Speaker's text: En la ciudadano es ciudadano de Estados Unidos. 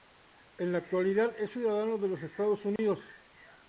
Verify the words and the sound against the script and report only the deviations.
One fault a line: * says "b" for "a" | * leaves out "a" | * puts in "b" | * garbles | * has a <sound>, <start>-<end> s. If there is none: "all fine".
* says "actualidad" for "ciudadano"
* puts in "los"
* has a dropout, 2.8-2.8 s